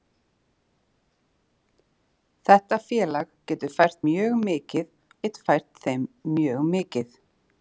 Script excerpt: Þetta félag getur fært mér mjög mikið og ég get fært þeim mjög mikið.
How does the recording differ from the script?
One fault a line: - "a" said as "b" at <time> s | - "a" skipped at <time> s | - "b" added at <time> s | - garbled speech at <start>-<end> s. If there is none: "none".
- "mér" skipped at 4.0 s
- "og ég" skipped at 4.9 s